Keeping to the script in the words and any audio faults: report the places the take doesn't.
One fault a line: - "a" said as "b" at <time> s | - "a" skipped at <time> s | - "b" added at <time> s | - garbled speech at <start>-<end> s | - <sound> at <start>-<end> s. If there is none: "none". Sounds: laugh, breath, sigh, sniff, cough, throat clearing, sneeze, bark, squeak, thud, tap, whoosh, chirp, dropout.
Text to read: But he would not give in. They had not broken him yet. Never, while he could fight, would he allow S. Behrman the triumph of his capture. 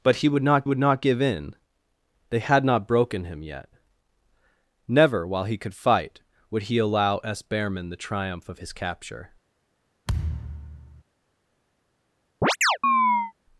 - "would not" added at 0.6 s
- thud at 10.1-11.0 s
- chirp at 12.4-13.3 s